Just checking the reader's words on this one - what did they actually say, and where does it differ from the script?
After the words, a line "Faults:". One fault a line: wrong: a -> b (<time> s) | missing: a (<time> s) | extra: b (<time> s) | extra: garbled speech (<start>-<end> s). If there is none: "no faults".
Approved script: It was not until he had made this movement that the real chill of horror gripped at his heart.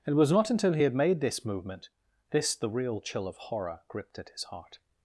It was not until he had made this movement this the real chill of horror gripped at his heart.
Faults:
wrong: that -> this (2.3 s)